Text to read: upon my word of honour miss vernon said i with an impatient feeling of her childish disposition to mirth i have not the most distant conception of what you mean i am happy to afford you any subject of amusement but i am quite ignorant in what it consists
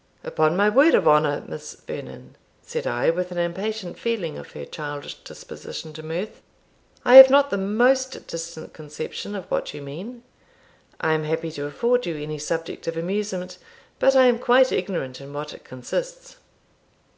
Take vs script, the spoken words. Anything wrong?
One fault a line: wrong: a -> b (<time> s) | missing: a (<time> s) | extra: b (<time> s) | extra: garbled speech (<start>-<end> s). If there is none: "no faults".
no faults